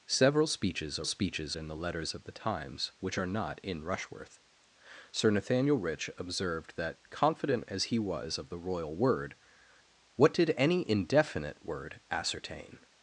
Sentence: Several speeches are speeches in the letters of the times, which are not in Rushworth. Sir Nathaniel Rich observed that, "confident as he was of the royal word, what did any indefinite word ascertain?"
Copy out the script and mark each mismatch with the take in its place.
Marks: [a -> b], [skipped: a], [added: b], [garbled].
Several speeches are speeches in the letters of the times, which are not in Rushworth. Sir Nathaniel Rich observed that, "confident as he was of the royal word, what did any indefinite word ascertain?"